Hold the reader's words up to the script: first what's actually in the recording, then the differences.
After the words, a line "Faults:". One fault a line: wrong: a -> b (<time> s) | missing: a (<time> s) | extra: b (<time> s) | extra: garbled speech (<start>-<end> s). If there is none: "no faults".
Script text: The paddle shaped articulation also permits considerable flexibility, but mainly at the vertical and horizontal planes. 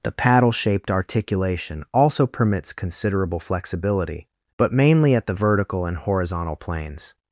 The paddle shaped articulation also permits considerable flexibility, but mainly at the vertical and horizontal planes.
Faults:
no faults